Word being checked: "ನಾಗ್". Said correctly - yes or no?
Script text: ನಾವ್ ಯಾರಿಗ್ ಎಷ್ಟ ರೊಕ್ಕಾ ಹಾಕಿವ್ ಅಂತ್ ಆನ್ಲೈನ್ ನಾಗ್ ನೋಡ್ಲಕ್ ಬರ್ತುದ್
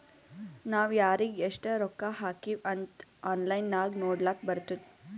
yes